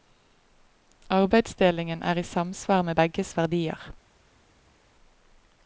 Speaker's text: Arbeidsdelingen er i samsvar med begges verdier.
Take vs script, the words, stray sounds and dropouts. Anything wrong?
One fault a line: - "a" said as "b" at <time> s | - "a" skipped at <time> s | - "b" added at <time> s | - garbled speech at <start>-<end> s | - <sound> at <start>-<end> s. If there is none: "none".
none